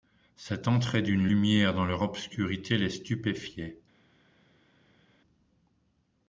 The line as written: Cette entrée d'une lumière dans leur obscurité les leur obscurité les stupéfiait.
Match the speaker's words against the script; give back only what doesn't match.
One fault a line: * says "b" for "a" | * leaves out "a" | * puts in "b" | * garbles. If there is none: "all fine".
* leaves out "leur obscurité les"